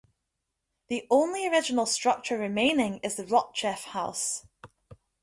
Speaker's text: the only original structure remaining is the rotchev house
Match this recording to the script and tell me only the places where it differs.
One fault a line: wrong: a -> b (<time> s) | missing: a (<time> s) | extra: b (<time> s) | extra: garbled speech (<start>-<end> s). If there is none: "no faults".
no faults